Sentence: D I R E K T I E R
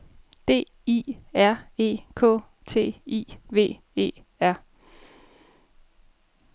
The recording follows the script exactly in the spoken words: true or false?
false